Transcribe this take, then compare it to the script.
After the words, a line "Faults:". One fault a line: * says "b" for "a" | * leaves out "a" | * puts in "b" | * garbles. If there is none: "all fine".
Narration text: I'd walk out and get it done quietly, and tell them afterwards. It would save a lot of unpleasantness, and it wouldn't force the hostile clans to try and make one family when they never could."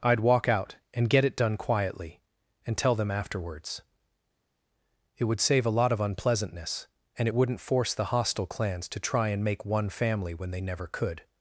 I'd walk out and get it done quietly, and tell them afterwards. It would save a lot of unpleasantness, and it wouldn't force the hostile clans to try and make one family when they never could."
Faults:
all fine